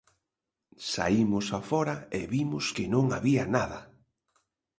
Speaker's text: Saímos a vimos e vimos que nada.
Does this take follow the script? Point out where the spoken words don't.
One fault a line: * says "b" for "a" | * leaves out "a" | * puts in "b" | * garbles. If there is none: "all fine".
* says "fóra" for "vimos"
* puts in "non había"